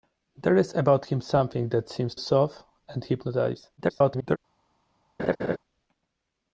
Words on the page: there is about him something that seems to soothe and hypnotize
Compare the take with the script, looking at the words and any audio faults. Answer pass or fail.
fail